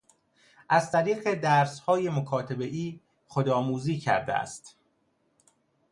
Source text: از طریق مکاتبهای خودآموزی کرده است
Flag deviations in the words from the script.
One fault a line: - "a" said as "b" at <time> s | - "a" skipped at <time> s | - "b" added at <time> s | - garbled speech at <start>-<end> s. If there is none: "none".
- "درسهای" added at 1.3 s